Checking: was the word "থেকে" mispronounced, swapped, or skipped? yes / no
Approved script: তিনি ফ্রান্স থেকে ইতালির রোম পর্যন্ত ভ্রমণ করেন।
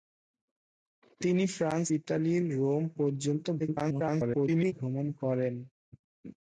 yes